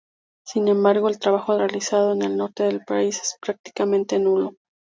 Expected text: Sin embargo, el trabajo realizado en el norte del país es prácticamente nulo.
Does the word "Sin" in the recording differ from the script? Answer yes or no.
no